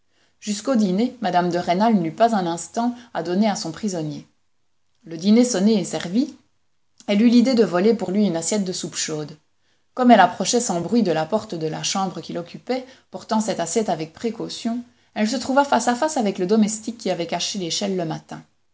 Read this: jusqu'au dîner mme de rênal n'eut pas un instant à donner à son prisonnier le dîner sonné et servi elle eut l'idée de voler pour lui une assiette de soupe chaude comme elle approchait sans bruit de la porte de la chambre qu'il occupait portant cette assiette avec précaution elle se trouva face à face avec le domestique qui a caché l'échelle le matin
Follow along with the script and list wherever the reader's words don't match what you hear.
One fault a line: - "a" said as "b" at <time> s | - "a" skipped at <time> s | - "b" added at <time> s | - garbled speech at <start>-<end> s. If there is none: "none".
- "a" said as "avait" at 17.1 s